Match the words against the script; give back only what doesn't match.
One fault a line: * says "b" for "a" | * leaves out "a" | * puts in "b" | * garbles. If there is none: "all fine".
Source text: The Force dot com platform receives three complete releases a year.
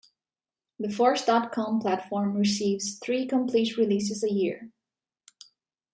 all fine